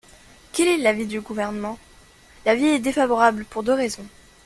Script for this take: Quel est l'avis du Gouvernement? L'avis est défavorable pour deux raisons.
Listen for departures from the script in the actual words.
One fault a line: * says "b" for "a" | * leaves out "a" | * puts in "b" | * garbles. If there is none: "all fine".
all fine